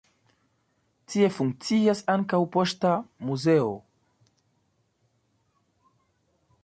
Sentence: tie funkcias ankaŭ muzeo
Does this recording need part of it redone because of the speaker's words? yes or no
yes